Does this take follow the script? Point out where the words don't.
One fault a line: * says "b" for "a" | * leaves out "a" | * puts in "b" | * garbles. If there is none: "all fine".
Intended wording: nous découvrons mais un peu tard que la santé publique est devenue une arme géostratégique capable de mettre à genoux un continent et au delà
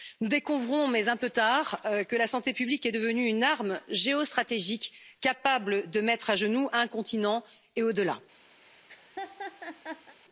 all fine